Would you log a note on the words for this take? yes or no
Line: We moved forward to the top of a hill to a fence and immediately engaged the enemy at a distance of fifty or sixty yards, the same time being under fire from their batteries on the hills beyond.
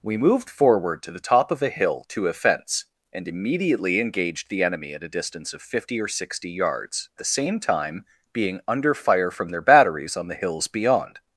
no